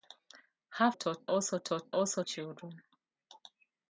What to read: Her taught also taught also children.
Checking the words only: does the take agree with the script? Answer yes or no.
yes